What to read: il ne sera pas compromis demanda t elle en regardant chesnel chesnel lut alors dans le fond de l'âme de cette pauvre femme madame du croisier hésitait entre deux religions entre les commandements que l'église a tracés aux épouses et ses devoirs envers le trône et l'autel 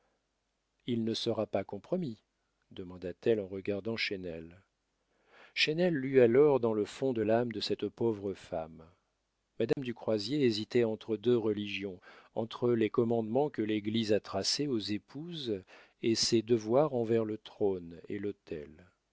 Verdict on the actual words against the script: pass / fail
pass